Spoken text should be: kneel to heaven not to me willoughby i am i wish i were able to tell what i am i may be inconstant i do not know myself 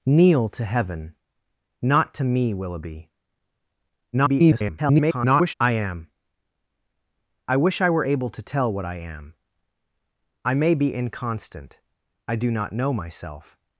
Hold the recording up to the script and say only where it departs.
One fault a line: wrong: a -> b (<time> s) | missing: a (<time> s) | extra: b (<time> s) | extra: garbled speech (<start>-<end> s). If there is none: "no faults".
extra: garbled speech (4.1-5.5 s)